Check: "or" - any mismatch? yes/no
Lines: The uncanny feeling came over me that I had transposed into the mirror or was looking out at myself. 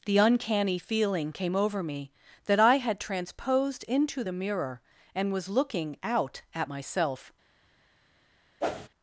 yes